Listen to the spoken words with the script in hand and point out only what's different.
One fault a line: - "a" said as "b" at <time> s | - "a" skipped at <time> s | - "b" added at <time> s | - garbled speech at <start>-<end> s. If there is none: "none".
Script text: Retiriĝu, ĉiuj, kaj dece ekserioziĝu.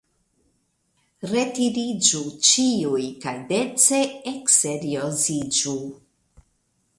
none